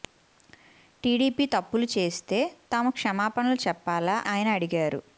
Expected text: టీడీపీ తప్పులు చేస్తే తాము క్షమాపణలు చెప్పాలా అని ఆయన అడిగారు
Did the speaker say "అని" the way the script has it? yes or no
no